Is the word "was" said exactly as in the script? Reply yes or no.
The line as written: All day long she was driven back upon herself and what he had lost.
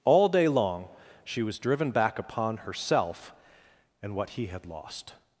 yes